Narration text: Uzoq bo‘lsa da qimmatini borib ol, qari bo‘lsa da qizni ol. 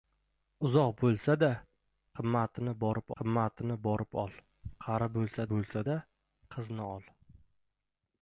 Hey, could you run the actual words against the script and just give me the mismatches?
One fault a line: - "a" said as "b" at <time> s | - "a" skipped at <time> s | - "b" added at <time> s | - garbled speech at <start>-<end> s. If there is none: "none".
- "qimmatini borib" added at 3.2 s
- "bo‘lsa" added at 5.5 s